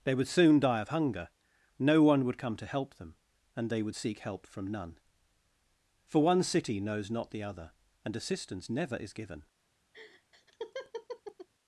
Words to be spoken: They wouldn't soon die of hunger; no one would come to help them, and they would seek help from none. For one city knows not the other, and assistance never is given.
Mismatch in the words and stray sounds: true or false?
true